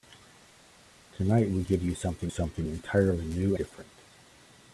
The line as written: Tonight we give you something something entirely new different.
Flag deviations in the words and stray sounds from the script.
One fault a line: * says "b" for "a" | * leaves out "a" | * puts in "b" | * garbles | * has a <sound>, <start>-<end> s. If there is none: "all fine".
all fine